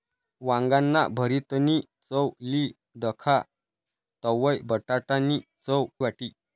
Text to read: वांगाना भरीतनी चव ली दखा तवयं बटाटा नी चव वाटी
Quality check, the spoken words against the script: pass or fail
pass